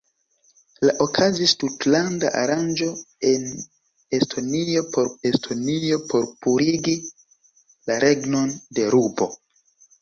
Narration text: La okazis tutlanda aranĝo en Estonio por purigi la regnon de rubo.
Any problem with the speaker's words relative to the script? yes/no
yes